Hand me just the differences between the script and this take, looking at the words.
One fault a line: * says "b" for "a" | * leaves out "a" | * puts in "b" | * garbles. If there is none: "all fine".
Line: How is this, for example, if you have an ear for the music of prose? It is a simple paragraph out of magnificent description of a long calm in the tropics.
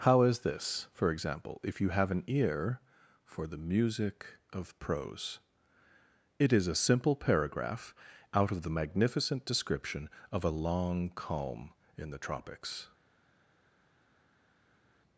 * puts in "the"